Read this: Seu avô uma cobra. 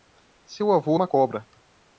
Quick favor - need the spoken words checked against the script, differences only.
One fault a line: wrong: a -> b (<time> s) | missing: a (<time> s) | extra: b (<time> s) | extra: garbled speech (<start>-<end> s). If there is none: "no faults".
no faults